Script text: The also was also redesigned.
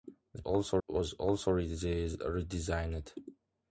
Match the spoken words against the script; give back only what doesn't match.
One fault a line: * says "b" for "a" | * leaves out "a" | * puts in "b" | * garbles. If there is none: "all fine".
all fine